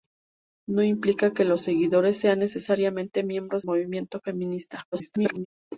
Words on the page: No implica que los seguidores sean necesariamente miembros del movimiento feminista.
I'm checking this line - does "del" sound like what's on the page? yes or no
no